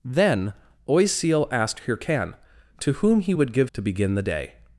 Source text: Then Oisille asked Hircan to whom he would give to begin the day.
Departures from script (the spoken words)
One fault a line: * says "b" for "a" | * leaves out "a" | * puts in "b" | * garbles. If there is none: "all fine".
all fine